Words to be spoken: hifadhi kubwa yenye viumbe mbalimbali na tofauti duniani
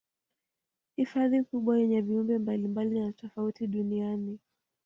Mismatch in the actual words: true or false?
false